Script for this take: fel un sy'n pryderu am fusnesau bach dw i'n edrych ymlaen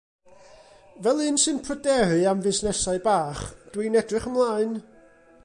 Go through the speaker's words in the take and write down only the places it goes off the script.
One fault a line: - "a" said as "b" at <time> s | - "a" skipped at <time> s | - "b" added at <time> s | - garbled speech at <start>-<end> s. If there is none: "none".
none